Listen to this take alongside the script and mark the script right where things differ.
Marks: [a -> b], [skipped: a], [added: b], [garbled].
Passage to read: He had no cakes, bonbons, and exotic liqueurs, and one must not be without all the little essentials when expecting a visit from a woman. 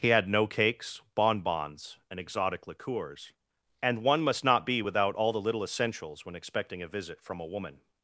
He had no cakes, bonbons, and exotic liqueurs, and one must not be without all the little essentials when expecting a visit from a woman.